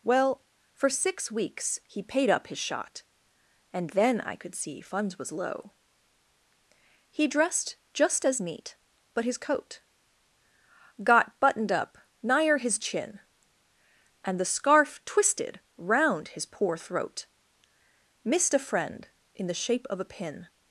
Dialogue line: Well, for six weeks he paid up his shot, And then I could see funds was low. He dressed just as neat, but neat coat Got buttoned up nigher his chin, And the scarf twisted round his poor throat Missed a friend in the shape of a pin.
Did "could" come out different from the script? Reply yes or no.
no